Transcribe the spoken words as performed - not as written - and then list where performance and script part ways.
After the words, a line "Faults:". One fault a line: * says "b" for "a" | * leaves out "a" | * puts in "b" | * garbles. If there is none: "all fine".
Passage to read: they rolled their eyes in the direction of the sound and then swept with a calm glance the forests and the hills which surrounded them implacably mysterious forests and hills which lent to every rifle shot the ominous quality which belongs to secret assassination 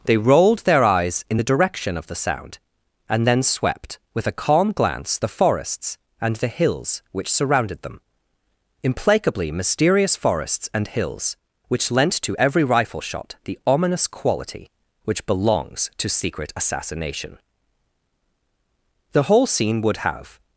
they rolled their eyes in the direction of the sound and then swept with a calm glance the forests and the hills which surrounded them implacably mysterious forests and hills which lent to every rifle shot the ominous quality which belongs to secret assassination the whole scene would have
Faults:
* puts in "the whole scene would have"